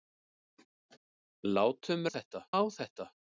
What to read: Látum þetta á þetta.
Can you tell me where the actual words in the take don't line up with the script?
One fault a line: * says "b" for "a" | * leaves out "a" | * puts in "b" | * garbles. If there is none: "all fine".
all fine